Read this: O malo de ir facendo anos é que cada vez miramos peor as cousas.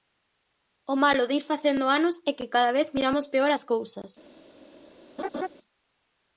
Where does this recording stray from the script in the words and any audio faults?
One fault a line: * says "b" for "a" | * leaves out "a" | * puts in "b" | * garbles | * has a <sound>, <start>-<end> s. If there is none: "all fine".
* has a laugh, 5.2-5.5 s